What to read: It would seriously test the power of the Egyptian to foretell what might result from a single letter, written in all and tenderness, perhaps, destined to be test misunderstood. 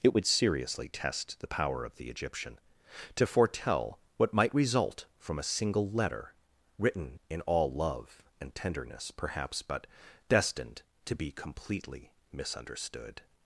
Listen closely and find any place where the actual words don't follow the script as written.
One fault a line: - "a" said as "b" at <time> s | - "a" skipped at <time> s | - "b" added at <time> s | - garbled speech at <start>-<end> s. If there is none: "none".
- "love" added at 7.7 s
- "but" added at 9.6 s
- "test" said as "completely" at 11.3 s